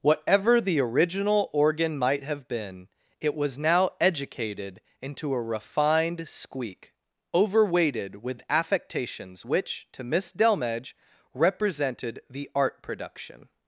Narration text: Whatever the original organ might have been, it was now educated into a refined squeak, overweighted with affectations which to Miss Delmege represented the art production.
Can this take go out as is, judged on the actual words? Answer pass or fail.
pass